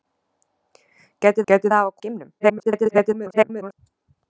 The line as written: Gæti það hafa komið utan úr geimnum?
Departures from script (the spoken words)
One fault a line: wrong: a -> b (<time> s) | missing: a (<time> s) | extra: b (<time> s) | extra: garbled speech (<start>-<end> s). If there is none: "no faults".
extra: gæti (1.5 s)
missing: komið utan (1.9 s)
extra: garbled speech (2.4-3.7 s)